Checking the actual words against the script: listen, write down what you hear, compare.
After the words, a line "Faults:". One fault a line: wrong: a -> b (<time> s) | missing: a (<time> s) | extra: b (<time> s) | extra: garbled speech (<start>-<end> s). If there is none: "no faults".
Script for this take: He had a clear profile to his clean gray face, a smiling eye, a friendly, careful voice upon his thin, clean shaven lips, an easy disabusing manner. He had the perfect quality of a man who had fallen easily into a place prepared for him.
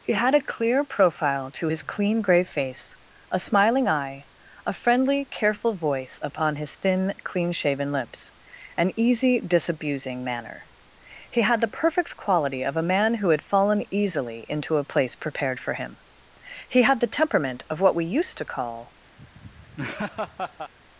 He had a clear profile to his clean gray face, a smiling eye, a friendly, careful voice upon his thin, clean shaven lips, an easy disabusing manner. He had the perfect quality of a man who had fallen easily into a place prepared for him. He had the temperament of what we used to call
Faults:
extra: He had the temperament of what we used to call (16.7 s)